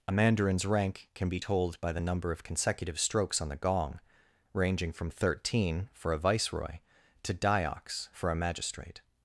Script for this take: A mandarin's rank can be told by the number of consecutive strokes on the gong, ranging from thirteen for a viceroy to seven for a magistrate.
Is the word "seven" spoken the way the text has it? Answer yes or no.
no